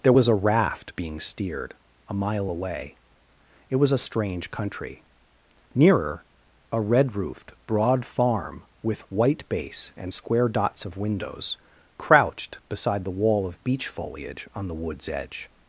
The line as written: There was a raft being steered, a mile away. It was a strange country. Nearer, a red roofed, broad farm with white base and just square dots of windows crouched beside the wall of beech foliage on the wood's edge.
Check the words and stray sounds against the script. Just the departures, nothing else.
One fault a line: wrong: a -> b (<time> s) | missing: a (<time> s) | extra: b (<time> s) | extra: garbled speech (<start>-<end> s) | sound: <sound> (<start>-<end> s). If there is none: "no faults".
missing: just (10.1 s)